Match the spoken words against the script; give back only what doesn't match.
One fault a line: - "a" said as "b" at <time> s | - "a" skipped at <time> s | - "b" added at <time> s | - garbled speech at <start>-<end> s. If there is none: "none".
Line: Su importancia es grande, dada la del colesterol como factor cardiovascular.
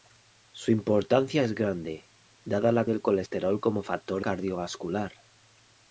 none